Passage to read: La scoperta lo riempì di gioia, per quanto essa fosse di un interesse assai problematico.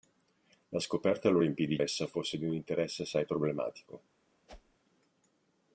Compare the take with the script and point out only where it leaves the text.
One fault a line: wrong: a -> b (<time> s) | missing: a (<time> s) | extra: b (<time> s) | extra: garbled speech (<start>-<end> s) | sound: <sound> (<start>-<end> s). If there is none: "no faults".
missing: gioia per quanto (1.8 s)
sound: whoosh (4.5-4.8 s)